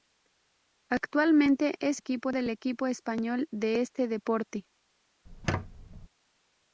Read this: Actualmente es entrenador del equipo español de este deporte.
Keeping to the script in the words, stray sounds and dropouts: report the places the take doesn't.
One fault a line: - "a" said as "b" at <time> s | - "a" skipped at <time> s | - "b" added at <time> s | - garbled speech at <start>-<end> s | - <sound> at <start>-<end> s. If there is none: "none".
- "entrenador" said as "equipo" at 2.0 s
- squeak at 5.2-6.1 s